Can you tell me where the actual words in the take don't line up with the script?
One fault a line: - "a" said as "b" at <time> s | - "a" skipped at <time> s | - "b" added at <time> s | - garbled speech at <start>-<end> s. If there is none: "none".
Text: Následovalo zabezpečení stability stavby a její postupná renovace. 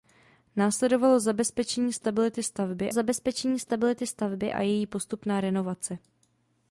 - "zabezpečení stability stavby" added at 2.9 s